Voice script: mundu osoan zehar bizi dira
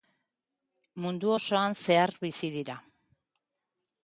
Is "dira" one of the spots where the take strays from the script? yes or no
no